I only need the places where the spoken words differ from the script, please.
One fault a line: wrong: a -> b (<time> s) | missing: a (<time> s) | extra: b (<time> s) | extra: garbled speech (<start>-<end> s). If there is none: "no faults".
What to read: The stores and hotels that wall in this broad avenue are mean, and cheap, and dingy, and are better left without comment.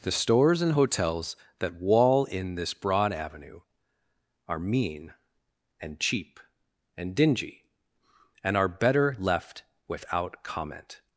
no faults